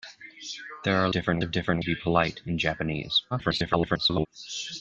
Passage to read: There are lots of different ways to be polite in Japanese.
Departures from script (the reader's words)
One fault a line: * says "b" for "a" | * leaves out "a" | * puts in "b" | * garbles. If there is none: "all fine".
* says "different" for "lots"
* leaves out "ways"
* garbles